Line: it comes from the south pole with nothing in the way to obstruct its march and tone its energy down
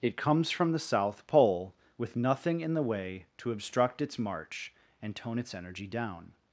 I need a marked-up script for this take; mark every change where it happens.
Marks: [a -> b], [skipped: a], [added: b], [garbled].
it comes from the south pole with nothing in the way to obstruct its march and tone its energy down